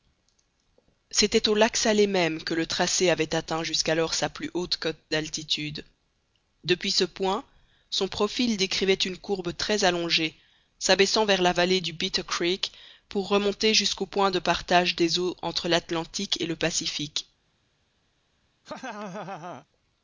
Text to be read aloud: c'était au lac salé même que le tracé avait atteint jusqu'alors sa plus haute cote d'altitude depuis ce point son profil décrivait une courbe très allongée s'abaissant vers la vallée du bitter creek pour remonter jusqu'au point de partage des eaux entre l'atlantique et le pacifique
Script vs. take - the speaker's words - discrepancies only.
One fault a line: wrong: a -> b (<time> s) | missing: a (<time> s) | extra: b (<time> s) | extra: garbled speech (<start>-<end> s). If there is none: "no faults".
no faults